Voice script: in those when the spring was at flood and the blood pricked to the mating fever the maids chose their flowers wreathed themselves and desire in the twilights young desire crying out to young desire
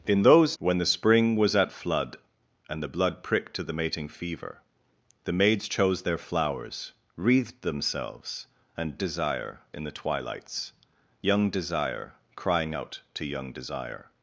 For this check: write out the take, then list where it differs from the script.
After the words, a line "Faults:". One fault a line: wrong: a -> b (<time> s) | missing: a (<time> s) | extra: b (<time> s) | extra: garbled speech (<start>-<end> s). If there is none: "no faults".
in those when the spring was at flood and the blood pricked to the mating fever the maids chose their flowers wreathed themselves and desire in the twilights young desire crying out to young desire
Faults:
no faults